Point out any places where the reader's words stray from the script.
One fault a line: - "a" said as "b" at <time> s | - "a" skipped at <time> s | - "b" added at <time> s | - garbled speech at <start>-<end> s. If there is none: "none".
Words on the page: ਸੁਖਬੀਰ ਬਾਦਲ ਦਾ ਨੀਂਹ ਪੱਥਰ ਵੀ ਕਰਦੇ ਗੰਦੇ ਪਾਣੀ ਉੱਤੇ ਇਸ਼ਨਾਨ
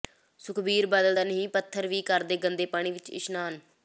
- "ਉੱਤੇ" said as "ਵਿੱਚ" at 2.9 s